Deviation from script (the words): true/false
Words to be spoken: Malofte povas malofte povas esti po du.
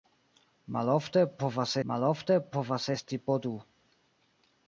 false